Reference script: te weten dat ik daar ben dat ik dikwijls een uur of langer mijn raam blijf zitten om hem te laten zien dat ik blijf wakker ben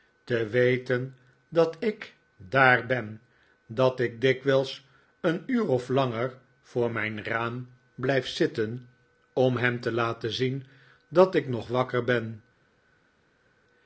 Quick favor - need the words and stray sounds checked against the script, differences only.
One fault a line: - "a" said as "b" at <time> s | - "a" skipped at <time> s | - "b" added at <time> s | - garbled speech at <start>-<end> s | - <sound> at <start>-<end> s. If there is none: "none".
- "voor" added at 6.6 s
- "blijf" said as "nog" at 11.5 s